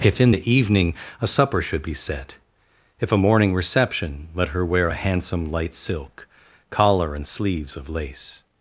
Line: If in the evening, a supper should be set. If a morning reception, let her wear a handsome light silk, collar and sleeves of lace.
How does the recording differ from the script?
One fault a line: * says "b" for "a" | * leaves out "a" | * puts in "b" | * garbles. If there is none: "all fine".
all fine